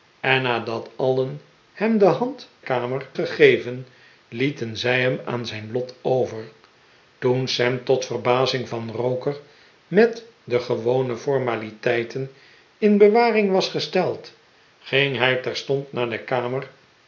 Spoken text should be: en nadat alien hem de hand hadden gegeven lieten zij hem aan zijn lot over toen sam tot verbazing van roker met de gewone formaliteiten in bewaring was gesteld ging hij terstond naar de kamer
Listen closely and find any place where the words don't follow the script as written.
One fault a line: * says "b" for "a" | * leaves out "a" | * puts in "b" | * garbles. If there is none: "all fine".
* says "kamer" for "hadden"